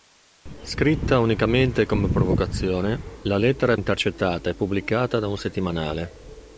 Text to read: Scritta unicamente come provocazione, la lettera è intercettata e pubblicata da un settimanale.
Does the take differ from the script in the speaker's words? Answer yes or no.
no